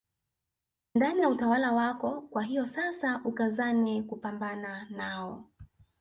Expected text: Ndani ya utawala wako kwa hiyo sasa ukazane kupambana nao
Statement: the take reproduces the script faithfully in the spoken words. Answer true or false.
true